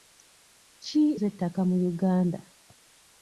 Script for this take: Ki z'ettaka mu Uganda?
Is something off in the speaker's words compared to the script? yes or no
no